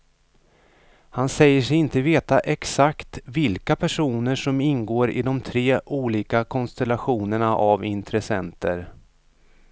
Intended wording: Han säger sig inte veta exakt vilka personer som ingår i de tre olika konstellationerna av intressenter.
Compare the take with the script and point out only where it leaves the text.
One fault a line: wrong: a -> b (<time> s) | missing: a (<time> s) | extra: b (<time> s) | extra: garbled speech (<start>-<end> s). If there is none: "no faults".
no faults